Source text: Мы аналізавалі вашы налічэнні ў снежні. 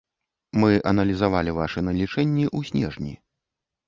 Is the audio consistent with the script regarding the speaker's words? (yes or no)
yes